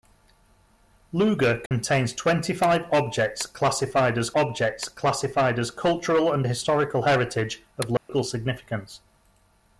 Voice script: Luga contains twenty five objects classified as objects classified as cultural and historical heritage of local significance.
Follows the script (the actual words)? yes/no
yes